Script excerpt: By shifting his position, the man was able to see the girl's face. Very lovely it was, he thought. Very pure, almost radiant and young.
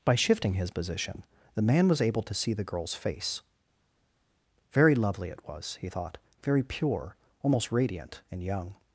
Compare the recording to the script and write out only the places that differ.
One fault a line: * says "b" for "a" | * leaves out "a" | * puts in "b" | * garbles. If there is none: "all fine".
all fine